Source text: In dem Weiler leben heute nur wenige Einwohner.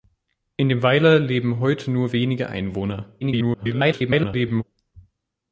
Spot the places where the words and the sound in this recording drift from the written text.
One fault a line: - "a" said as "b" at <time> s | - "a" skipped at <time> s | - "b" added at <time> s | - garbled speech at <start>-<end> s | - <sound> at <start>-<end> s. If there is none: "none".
- garbled speech at 3.2-4.6 s